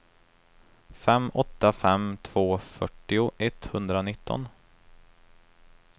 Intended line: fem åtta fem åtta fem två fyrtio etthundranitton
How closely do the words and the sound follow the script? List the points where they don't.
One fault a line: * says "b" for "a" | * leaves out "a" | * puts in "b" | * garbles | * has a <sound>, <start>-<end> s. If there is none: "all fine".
* leaves out "åtta fem"